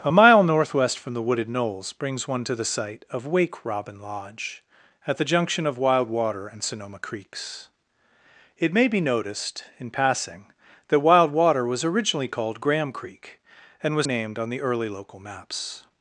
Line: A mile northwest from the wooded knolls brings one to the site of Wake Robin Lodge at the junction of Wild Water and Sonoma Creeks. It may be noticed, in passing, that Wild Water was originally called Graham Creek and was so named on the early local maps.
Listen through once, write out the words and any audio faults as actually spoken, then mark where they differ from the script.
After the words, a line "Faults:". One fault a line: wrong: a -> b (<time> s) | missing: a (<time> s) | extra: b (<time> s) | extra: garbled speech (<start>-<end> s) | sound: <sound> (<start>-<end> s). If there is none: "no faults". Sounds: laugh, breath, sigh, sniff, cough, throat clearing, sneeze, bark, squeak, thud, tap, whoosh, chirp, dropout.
A mile northwest from the wooded knolls brings one to the site of Wake Robin Lodge at the junction of Wild Water and Sonoma Creeks. It may be noticed, in passing, that Wild Water was originally called Graham Creek and was named on the early local maps.
Faults:
missing: so (14.1 s)